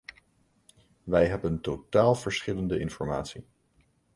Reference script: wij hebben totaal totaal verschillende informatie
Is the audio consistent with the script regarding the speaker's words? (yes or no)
no